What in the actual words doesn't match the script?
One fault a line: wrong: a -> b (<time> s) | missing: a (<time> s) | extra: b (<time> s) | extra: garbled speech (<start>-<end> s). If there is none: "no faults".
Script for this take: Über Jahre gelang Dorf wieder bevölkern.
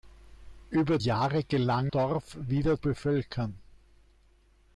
no faults